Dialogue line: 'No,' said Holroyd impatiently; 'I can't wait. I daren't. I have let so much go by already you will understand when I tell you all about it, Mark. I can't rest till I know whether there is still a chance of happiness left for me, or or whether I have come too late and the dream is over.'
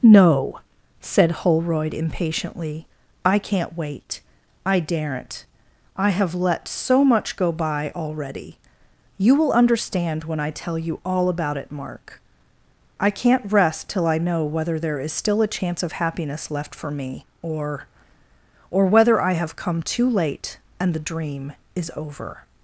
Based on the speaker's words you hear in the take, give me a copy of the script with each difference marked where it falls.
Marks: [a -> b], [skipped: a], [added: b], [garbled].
'No,' said Holroyd impatiently; 'I can't wait. I daren't. I have let so much go by already you will understand when I tell you all about it, Mark. I can't rest till I know whether there is still a chance of happiness left for me, or or whether I have come too late and the dream is over.'